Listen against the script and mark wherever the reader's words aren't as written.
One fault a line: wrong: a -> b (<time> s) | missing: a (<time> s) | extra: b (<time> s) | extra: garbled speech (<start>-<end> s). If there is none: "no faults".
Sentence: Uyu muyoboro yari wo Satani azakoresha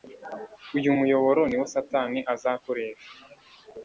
wrong: yari -> ni (1.5 s)